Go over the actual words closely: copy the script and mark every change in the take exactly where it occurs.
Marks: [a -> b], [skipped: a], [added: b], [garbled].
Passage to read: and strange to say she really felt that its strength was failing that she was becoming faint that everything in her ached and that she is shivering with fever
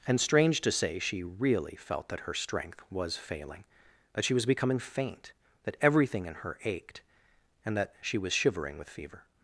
and strange to say she really felt that [its -> her] strength was failing that she was becoming faint that everything in her ached and that she [is -> was] shivering with fever